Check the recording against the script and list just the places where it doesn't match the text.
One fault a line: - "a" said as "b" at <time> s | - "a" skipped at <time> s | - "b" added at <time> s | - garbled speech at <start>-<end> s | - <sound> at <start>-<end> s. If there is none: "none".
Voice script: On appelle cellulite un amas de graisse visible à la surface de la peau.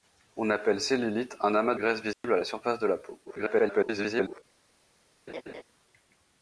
- "de" skipped at 1.8 s
- dropout at 2.1-2.2 s
- garbled speech at 3.2-4.4 s
- laugh at 5.3-5.6 s